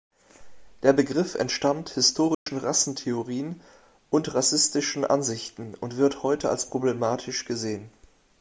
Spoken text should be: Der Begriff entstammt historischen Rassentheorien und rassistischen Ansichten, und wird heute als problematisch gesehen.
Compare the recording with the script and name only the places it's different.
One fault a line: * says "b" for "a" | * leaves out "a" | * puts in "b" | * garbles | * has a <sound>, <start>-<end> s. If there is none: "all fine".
* has a dropout, 2.3-2.5 s